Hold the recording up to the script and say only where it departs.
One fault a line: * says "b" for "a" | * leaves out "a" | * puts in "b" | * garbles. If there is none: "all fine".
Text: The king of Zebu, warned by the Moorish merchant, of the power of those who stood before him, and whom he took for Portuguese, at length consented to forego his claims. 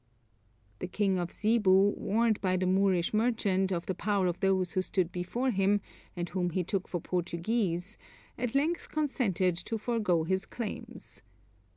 all fine